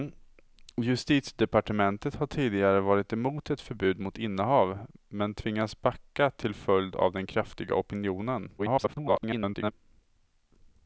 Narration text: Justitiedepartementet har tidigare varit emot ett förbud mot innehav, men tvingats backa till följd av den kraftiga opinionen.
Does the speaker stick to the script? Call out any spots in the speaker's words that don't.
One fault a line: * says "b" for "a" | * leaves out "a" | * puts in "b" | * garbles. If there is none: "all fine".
* garbles